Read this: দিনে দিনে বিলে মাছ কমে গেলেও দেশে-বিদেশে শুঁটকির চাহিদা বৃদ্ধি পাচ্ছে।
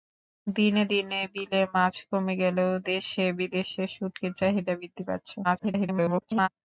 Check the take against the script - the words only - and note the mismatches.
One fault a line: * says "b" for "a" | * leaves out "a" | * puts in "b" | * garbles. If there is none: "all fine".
* garbles